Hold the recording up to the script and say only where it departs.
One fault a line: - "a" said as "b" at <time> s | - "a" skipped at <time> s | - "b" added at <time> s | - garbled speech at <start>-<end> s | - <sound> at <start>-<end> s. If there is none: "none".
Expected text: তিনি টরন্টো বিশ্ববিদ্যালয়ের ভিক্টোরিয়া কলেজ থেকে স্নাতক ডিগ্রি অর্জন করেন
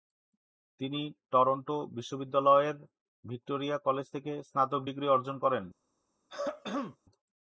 - throat clearing at 6.3-7.0 s